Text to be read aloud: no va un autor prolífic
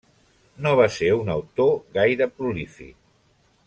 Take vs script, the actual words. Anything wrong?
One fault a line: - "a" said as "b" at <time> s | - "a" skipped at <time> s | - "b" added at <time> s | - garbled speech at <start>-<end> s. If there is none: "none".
- "ser" added at 0.9 s
- "gaire" added at 2.0 s